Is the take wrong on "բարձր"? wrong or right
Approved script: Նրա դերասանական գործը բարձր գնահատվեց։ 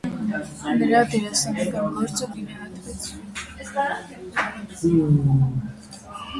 wrong